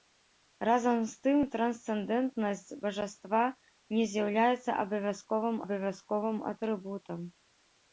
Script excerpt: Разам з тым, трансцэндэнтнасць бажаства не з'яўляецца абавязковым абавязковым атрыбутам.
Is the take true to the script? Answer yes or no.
yes